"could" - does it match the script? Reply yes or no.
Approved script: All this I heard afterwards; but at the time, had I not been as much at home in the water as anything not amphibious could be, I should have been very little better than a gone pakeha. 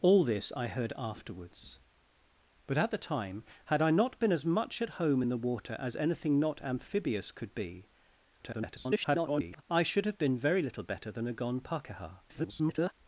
yes